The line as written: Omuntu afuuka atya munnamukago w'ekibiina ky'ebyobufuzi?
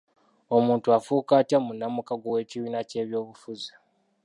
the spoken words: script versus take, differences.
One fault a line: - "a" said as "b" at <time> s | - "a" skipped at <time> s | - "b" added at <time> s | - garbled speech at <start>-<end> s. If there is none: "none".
none